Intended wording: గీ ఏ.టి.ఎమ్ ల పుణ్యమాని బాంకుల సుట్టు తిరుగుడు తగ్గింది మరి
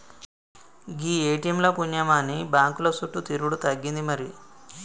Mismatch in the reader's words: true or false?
false